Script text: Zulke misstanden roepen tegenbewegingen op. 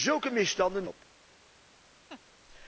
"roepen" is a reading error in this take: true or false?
true